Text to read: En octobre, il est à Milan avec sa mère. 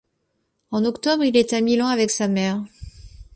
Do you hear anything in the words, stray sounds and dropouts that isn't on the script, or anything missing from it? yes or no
no